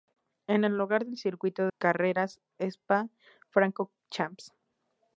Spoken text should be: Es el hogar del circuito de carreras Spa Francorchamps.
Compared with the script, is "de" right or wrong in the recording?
wrong